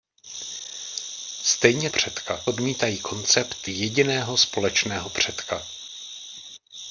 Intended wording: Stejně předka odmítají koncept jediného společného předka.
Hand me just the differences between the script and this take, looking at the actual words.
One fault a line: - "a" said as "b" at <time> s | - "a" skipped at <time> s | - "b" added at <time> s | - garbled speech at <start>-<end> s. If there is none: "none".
none